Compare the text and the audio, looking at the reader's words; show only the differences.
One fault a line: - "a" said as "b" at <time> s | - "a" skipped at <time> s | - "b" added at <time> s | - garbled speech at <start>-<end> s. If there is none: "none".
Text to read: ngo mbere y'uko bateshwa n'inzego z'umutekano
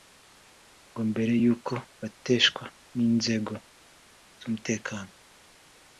none